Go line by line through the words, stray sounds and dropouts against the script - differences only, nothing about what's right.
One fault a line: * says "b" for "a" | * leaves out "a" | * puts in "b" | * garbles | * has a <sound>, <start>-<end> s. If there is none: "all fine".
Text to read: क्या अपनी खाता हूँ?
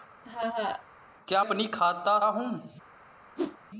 * has a laugh, 0.2-0.9 s
* has a whoosh, 3.4-3.6 s